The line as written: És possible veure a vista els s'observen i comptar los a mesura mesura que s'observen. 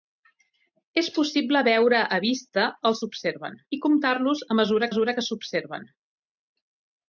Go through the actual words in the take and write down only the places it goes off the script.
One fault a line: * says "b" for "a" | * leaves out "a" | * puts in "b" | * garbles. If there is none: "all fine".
all fine